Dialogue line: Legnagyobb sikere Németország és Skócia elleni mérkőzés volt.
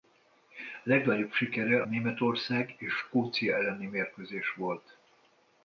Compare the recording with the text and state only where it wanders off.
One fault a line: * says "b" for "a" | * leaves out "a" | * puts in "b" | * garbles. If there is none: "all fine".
all fine